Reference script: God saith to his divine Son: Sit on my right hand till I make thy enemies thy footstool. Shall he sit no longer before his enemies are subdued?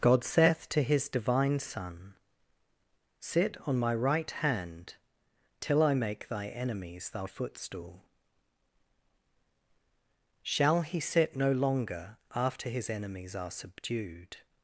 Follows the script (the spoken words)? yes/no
no